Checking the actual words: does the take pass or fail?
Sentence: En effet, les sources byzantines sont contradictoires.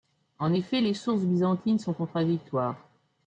pass